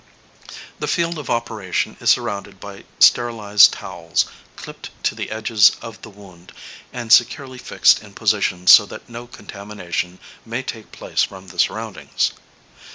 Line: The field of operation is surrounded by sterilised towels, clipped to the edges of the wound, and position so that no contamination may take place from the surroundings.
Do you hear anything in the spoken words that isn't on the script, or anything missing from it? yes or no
yes